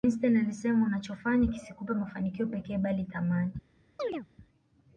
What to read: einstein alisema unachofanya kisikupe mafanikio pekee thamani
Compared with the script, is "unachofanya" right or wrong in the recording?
right